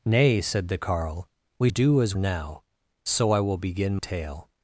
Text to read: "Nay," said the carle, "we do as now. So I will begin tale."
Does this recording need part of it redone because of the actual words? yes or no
no